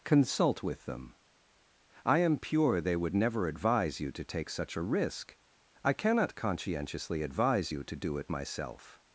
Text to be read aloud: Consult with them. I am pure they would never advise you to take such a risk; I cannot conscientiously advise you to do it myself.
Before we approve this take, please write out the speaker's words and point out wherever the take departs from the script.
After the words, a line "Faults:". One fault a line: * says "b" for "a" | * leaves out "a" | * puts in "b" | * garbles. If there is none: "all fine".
Consult with them. I am pure they would never advise you to take such a risk; I cannot conscientiously advise you to do it myself.
Faults:
all fine